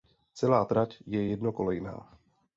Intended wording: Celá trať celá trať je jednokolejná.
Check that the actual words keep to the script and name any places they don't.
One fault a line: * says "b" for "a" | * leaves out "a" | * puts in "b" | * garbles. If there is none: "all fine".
* leaves out "celá trať"